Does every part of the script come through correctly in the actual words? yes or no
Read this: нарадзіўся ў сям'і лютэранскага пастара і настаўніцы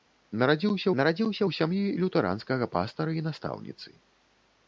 no